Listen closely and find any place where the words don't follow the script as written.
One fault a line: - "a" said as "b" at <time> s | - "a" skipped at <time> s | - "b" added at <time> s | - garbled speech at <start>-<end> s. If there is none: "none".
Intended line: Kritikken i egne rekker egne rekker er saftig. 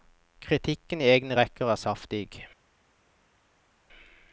- "egne rekker" skipped at 1.7 s